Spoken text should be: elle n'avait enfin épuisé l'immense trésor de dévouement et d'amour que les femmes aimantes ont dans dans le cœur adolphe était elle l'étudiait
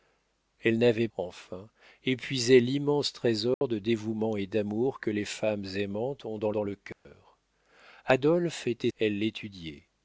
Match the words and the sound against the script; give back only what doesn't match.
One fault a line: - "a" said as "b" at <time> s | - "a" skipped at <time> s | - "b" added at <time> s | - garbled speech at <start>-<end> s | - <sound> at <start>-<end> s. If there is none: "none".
- dropout at 3.5-3.6 s
- dropout at 6.9-7.1 s